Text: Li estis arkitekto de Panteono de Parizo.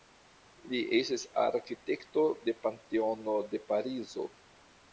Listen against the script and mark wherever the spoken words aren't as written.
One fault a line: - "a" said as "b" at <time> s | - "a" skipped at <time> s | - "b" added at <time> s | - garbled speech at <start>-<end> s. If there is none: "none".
none